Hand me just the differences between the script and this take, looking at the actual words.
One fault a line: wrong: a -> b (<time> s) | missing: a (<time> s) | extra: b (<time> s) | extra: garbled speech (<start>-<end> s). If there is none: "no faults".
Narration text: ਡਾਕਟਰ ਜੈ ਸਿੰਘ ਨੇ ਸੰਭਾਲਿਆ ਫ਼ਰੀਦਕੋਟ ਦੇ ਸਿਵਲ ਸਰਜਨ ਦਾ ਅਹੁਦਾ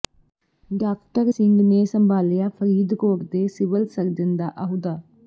missing: ਜੈ (1.3 s)